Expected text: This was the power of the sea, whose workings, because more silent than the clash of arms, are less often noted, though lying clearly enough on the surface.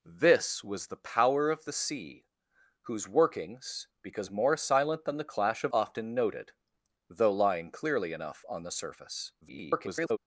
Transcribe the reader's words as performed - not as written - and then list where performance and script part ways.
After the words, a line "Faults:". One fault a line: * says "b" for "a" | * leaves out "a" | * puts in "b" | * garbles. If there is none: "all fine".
This was the power of the sea, whose workings, because more silent than the clash of often noted, though lying clearly enough on the surface. [garbled]
Faults:
* leaves out "arms are less"
* garbles